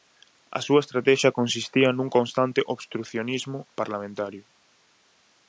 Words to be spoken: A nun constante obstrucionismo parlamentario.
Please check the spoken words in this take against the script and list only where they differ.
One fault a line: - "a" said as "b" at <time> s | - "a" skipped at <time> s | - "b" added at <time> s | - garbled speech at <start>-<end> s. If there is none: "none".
- "súa estratexia consistía" added at 0.7 s